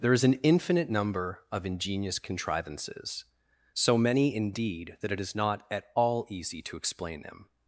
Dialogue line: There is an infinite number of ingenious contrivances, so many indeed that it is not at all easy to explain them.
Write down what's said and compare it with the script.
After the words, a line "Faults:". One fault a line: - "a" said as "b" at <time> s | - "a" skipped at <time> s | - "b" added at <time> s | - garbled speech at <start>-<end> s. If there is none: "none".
There is an infinite number of ingenious contrivances, so many indeed that it is not at all easy to explain them.
Faults:
none